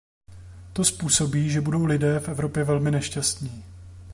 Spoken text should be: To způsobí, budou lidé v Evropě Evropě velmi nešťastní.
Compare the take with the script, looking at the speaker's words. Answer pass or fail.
fail